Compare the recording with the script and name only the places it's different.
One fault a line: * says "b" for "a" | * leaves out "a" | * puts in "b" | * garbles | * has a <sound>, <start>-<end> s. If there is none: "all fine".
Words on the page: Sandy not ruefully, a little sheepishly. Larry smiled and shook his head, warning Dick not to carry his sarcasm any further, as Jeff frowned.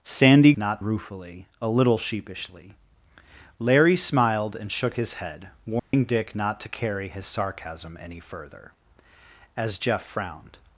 * has a dropout, 5.8-5.9 s